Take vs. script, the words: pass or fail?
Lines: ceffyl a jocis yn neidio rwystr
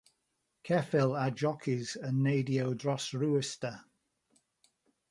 fail